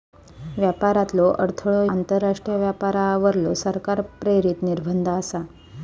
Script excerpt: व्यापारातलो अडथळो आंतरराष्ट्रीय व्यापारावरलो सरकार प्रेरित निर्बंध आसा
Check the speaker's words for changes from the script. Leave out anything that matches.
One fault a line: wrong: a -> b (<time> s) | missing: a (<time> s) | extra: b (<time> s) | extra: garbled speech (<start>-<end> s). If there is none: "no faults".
no faults